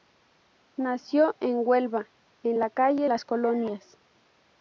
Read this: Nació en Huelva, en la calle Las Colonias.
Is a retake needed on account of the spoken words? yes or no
no